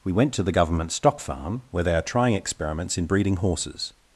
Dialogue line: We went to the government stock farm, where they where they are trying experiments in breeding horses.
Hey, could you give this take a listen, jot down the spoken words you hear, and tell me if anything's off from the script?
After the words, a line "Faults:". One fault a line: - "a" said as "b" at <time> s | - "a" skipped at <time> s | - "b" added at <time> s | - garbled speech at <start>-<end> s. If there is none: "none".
We went to the government stock farm, where they are trying experiments in breeding horses.
Faults:
- "where they" skipped at 1.9 s